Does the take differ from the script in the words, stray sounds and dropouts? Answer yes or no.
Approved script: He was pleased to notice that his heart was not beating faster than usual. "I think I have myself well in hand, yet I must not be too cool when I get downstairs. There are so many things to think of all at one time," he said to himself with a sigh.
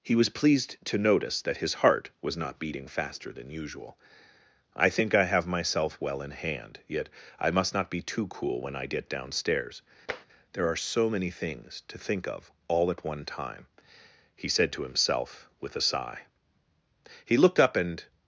yes